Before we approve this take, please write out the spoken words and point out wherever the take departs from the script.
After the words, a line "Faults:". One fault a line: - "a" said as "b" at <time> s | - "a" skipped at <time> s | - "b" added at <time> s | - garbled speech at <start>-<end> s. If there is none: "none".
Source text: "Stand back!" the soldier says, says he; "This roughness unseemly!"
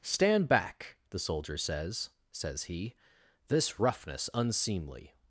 "Stand back!" the soldier says, says he; "This roughness unseemly!"
Faults:
none